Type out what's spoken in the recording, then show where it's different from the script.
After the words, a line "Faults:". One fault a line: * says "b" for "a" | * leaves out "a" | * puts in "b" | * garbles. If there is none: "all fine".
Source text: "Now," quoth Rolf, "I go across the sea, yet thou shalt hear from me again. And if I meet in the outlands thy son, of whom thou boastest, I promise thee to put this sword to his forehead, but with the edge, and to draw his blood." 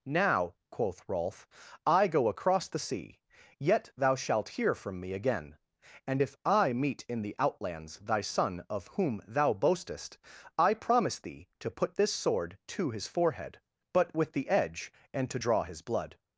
"Now," quoth Rolf, "I go across the sea, yet thou shalt hear from me again. And if I meet in the outlands thy son, of whom thou boastest, I promise thee to put this sword to his forehead, but with the edge, and to draw his blood."
Faults:
all fine